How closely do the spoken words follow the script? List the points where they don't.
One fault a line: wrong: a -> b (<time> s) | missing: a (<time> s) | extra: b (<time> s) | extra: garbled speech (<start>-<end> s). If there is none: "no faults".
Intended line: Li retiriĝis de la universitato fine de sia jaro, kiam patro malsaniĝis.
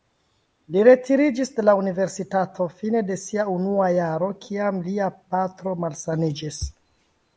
extra: unua (3.6 s)
extra: lia (4.9 s)